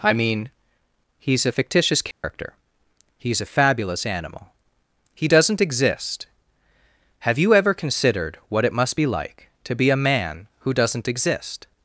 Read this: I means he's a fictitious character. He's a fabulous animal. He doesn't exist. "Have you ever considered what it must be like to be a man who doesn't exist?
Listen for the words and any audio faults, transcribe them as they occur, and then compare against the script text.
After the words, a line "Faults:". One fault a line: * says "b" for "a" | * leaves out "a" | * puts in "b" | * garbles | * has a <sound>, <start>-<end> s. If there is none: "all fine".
I mean he's a fictitious character. He's a fabulous animal. He doesn't exist. "Have you ever considered what it must be like to be a man who doesn't exist?
Faults:
* says "mean" for "means"
* has a dropout, 2.1-2.2 s